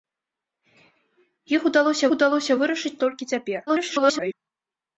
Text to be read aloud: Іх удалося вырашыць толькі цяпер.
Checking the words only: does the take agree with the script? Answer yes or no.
no